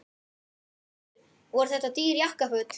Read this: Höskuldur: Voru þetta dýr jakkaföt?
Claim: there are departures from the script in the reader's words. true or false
false